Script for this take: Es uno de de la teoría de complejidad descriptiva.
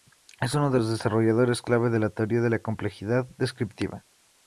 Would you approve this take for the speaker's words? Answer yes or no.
no